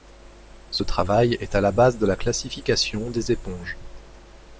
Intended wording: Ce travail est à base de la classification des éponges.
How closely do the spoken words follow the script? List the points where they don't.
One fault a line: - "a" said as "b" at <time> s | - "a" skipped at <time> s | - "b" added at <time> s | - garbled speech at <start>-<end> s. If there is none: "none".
- "la" added at 1.6 s